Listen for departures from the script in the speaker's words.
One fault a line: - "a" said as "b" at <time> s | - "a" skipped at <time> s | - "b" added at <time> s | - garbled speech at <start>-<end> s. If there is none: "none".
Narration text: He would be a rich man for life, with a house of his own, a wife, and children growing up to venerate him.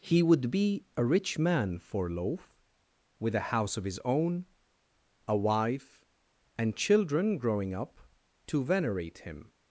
- "life" said as "loaf" at 2.1 s